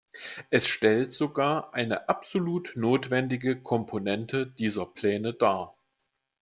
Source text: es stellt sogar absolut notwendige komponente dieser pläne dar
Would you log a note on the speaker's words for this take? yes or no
yes